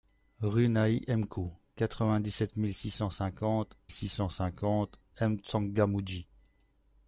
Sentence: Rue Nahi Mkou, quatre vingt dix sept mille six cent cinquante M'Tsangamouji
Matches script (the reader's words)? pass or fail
fail